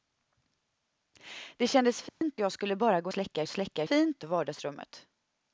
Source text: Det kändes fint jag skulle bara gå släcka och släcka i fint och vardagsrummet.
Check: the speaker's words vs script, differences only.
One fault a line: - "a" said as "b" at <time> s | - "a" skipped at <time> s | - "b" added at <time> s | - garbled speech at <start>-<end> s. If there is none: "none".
none